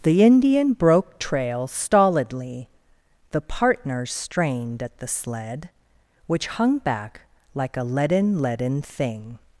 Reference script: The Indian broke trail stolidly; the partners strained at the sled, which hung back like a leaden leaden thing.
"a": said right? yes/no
yes